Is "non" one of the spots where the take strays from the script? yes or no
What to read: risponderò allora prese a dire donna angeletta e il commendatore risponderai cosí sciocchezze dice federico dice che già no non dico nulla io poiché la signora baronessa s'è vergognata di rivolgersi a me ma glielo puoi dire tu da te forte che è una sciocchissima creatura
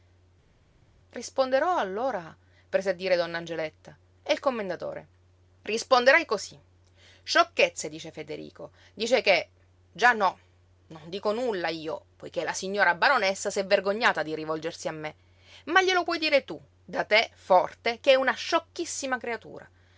no